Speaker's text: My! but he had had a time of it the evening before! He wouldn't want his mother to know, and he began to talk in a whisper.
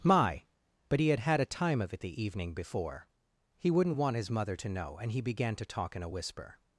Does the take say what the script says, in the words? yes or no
yes